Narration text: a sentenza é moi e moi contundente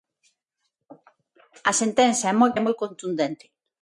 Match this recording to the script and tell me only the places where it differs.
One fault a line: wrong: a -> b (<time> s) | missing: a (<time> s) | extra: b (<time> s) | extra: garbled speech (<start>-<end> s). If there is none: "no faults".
no faults